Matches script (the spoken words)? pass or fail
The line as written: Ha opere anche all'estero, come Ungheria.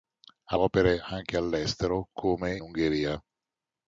pass